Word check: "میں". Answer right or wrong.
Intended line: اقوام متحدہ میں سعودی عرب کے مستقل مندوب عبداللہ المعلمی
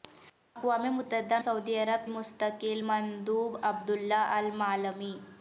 wrong